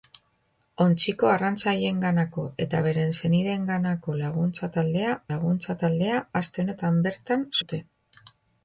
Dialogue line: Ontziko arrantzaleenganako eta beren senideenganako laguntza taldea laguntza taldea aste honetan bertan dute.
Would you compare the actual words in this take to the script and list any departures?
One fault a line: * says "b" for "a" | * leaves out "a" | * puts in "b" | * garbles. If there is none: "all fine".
all fine